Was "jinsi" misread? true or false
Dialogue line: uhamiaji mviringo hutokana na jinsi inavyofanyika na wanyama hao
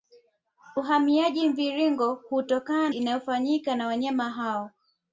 true